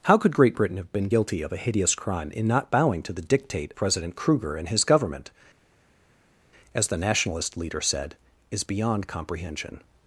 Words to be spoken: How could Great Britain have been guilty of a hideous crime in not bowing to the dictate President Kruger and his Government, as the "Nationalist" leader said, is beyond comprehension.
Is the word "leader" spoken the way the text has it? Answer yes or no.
yes